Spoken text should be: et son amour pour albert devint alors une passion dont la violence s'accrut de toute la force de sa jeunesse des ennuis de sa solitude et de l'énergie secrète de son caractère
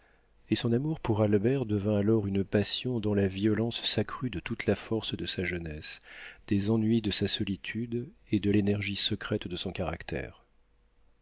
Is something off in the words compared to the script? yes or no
no